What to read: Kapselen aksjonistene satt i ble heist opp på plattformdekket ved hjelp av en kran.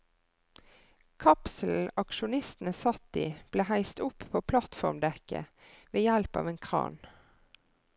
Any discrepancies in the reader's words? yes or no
no